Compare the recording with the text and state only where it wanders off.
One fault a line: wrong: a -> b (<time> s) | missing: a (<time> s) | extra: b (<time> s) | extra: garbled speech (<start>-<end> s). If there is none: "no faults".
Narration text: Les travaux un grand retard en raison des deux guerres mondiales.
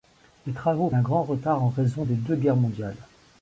no faults